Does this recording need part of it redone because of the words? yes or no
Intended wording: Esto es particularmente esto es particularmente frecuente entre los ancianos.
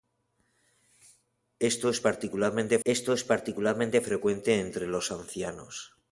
no